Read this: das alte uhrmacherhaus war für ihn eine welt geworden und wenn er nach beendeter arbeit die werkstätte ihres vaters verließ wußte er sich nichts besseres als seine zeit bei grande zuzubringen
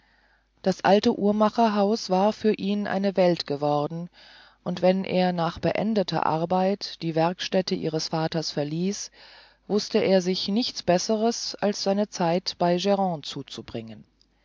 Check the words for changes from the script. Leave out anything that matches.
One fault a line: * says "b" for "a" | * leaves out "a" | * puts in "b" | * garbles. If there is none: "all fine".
all fine